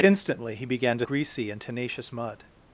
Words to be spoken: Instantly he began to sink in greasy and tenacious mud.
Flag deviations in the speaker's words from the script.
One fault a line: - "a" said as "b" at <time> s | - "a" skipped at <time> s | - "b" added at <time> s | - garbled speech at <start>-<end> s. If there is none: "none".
- "sink in" skipped at 1.1 s